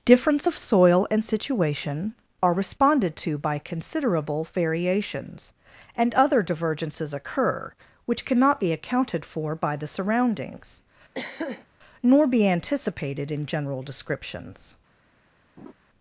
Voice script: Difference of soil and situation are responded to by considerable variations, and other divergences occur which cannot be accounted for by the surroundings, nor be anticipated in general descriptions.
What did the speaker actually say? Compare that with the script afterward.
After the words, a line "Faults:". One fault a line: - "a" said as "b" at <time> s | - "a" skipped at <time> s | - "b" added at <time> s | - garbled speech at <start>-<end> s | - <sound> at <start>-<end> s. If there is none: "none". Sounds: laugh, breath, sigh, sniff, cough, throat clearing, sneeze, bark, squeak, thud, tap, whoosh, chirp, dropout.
Difference of soil and situation are responded to by considerable variations, and other divergences occur which cannot be accounted for by the surroundings, nor be anticipated in general descriptions.
Faults:
- throat clearing at 11.1-11.7 s
- laugh at 15.6-15.7 s